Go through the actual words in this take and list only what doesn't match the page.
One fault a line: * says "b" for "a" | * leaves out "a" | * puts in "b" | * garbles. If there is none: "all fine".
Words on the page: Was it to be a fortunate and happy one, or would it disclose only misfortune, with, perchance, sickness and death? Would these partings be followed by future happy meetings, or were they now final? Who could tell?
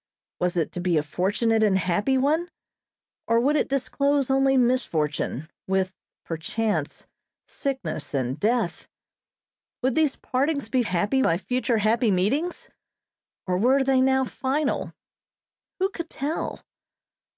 * says "happy" for "followed"